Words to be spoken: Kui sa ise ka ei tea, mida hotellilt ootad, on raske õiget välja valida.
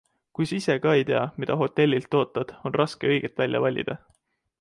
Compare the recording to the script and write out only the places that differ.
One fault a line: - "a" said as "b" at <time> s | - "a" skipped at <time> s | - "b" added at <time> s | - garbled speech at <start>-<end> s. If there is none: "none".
none